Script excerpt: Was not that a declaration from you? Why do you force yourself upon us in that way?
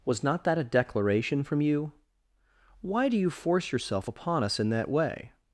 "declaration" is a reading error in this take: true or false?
false